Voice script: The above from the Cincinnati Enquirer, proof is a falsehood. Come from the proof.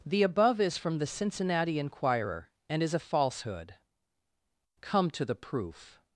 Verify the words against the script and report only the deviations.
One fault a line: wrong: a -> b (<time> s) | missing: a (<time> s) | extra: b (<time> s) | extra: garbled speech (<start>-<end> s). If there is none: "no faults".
extra: is (0.6 s)
wrong: proof -> and (2.7 s)
wrong: from -> to (5.1 s)